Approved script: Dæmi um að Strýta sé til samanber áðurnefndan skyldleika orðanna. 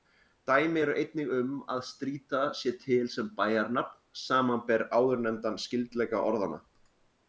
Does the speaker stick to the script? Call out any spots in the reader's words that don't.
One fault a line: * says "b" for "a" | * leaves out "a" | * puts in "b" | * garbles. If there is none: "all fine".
* puts in "eru einnig"
* puts in "sem bæjarnafn"